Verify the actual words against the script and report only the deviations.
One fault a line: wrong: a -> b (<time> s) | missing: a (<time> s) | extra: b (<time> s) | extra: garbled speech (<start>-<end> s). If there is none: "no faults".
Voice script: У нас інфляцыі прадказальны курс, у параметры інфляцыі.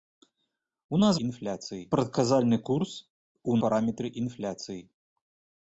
no faults